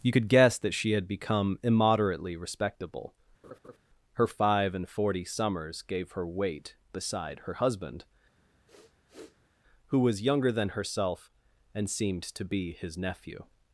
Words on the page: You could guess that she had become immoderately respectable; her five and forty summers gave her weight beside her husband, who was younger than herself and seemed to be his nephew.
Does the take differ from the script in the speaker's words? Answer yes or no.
no